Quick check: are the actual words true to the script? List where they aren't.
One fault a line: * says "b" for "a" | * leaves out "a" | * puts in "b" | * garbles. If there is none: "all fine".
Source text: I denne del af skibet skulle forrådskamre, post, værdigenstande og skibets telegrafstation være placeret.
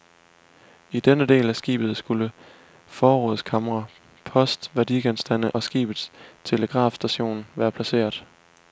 all fine